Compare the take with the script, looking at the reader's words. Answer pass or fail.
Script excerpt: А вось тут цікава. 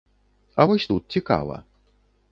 pass